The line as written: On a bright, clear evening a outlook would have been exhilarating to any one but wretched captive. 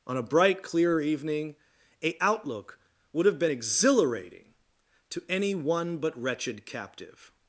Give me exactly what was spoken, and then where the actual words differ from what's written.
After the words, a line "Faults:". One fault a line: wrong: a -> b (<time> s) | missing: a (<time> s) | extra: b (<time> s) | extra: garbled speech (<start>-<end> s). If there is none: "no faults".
On a bright, clear evening a outlook would have been exhilarating to any one but wretched captive.
Faults:
no faults